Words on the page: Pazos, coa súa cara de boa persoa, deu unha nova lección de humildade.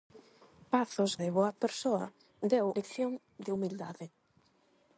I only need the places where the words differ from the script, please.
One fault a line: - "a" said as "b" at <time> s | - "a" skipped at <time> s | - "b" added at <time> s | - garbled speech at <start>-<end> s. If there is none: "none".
- "coa súa cara" skipped at 1.1 s
- "unha nova" skipped at 2.7 s